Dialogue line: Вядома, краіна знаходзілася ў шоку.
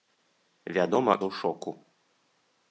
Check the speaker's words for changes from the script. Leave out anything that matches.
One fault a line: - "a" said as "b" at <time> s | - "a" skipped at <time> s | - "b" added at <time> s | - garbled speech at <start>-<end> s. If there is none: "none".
- "краіна знаходзілася" skipped at 1.1 s